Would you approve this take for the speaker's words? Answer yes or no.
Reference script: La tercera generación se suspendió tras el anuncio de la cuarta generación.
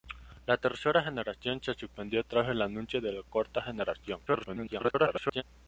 no